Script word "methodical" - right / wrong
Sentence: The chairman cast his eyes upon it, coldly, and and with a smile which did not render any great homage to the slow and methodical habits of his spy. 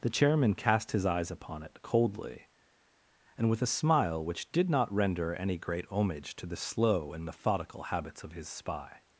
right